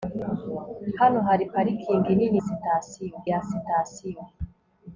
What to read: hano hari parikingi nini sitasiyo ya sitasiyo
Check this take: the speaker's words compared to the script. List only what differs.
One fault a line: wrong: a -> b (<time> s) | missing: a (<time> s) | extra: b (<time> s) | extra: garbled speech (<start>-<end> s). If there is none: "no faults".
no faults